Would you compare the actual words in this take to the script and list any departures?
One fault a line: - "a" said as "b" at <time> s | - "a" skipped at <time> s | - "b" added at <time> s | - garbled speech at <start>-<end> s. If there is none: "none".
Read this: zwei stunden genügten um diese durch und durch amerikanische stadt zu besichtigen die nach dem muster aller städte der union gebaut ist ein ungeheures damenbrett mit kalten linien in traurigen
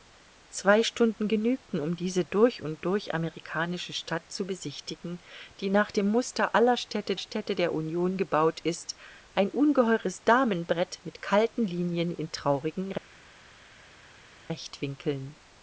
- "städte" added at 7.2 s